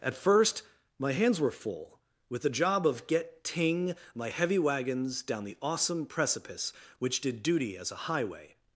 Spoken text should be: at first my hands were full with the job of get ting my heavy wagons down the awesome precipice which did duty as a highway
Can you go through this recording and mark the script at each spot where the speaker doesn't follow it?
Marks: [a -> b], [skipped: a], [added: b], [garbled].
at first my hands were full with the job of get ting my heavy wagons down the awesome precipice which did duty as a highway